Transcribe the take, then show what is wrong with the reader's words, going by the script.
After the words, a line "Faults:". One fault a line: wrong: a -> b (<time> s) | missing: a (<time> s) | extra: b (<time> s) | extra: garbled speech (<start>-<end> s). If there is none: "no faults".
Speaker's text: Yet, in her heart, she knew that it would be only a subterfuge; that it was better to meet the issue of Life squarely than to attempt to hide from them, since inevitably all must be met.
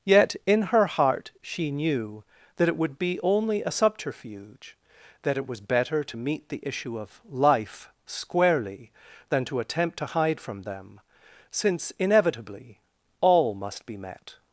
Yet, in her heart, she knew that it would be only a subterfuge; that it was better to meet the issue of Life squarely than to attempt to hide from them, since inevitably all must be met.
Faults:
no faults